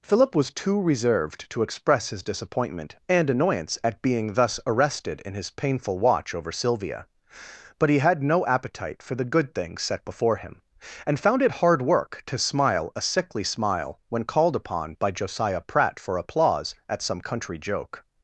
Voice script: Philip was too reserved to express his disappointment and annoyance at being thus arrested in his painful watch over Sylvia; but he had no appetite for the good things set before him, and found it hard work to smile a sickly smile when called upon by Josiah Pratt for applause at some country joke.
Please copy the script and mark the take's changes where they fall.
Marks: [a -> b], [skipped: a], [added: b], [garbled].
Philip was too reserved to express his disappointment and annoyance at being thus arrested in his painful watch over Sylvia; but he had no appetite for the good things set before him, and found it hard work to smile a sickly smile when called upon by Josiah Pratt for applause at some country joke.